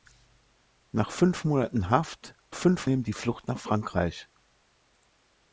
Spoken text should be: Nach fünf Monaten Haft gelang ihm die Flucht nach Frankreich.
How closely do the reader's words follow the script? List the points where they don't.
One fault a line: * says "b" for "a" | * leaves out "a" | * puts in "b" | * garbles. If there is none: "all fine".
* says "fünf" for "gelang"